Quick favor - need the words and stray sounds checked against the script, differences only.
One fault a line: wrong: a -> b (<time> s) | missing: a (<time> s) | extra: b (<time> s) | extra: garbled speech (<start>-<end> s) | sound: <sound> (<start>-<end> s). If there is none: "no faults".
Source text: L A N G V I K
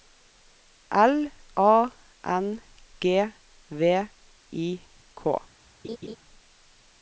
sound: laugh (5.8-6.2 s)